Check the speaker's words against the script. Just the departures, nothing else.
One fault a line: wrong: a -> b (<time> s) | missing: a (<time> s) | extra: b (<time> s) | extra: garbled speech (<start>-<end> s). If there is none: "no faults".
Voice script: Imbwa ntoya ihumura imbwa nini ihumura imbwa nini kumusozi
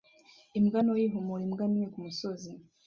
missing: ihumura imbwa nini (1.9 s)